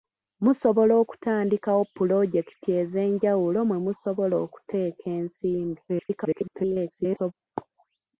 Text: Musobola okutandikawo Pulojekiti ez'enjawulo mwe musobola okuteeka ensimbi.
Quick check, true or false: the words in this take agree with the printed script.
false